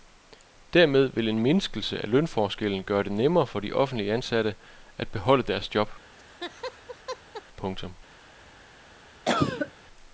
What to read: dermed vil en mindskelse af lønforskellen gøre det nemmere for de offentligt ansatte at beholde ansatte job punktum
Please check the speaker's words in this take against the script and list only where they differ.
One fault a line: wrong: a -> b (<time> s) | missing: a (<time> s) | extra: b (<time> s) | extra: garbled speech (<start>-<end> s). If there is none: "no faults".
wrong: ansatte -> deres (5.4 s)